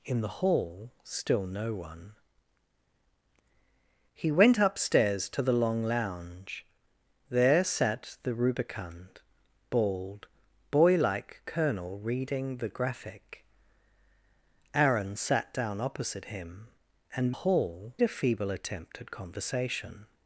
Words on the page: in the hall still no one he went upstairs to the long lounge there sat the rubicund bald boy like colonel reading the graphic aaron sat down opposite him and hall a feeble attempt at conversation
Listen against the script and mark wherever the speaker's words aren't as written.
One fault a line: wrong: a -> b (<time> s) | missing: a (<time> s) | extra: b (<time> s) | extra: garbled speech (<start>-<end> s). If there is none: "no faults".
no faults